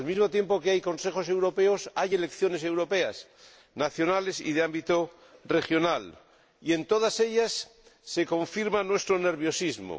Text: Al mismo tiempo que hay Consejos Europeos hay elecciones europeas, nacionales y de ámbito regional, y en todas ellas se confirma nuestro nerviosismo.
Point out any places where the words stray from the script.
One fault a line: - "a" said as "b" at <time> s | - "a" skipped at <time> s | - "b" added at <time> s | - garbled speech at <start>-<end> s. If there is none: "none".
none